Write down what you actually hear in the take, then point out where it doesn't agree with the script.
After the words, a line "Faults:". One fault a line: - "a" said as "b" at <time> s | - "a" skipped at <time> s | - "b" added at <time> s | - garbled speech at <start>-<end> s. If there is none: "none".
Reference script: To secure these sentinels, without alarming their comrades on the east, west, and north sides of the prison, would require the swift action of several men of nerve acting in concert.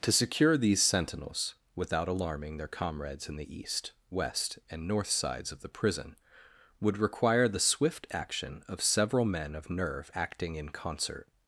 To secure these sentinels, without alarming their comrades in the east, west, and north sides of the prison, would require the swift action of several men of nerve acting in concert.
Faults:
- "on" said as "in" at 3.3 s